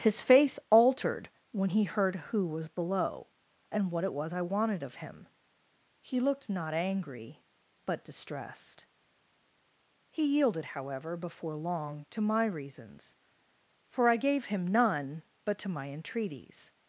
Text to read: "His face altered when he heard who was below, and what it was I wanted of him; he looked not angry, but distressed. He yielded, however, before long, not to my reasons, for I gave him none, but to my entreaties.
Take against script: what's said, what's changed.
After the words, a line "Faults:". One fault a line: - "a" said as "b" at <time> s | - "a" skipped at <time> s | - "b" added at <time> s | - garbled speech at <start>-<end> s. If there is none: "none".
"His face altered when he heard who was below, and what it was I wanted of him; he looked not angry, but distressed. He yielded, however, before long, to my reasons, for I gave him none, but to my entreaties.
Faults:
- "not" skipped at 12.1 s